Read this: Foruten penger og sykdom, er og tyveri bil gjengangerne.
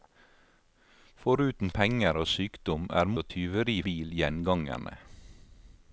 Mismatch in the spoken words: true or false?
false